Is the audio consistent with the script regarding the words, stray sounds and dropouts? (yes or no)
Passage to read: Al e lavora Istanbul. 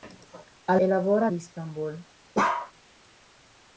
no